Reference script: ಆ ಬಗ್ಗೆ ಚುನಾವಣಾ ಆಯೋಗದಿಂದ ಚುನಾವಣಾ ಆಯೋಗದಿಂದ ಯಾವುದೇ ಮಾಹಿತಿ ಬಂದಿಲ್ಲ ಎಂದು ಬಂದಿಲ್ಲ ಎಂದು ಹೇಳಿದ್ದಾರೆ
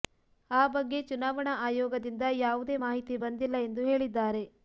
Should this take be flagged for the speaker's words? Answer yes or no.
yes